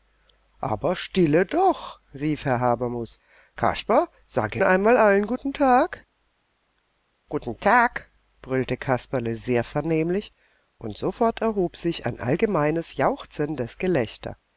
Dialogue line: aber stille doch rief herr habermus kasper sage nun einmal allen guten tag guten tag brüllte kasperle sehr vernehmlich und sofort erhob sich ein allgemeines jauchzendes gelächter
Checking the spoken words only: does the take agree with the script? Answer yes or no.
no